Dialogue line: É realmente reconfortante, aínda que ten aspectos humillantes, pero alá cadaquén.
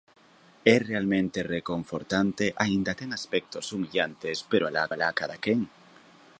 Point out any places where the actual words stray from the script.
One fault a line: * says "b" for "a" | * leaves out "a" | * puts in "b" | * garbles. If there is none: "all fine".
* leaves out "que"
* puts in "alá"